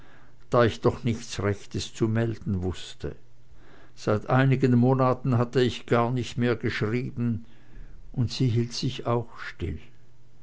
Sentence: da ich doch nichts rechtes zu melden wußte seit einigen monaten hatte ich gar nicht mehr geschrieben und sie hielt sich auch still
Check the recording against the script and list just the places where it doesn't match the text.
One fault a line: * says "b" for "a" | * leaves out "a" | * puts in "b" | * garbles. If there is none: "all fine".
all fine